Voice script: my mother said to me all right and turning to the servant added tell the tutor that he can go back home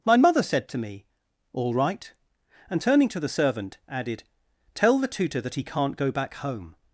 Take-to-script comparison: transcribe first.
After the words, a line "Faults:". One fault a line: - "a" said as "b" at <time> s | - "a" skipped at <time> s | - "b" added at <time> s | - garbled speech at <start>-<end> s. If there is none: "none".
my mother said to me all right and turning to the servant added tell the tutor that he can't go back home
Faults:
- "can" said as "can't" at 5.6 s